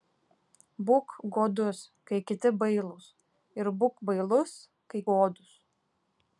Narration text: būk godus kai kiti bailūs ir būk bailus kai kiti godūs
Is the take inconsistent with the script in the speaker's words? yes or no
yes